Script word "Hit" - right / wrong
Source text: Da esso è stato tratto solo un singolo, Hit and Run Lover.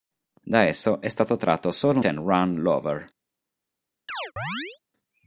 wrong